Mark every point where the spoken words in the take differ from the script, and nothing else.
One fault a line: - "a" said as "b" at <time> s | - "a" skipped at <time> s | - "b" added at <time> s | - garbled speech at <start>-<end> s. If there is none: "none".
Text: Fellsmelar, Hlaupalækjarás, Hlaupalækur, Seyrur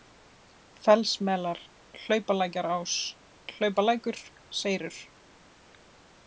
none